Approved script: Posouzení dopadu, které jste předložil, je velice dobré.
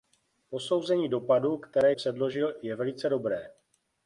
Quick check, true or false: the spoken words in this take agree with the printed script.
false